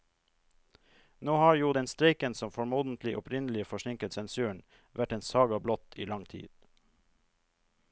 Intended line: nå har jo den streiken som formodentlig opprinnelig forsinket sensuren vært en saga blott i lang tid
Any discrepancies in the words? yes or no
no